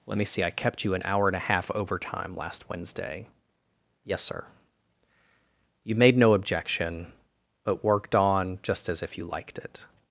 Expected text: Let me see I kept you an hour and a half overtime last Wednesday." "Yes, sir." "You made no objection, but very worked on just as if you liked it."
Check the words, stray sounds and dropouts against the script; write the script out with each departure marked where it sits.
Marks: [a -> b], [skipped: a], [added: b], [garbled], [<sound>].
Let me see I kept you an hour and a half overtime last Wednesday." "Yes, sir." "You made no objection, but [skipped: very] worked on just as if you liked it."